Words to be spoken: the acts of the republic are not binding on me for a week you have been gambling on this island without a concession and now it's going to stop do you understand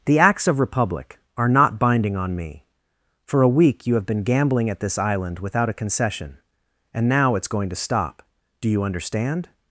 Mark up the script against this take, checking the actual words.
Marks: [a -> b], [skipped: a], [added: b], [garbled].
the acts of [skipped: the] republic are not binding on me for a week you have been gambling [on -> at] this island without a concession and now it's going to stop do you understand